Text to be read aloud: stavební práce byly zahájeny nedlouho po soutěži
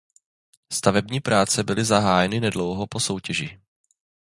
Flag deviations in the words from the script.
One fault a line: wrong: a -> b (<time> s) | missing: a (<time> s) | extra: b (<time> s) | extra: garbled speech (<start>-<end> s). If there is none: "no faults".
no faults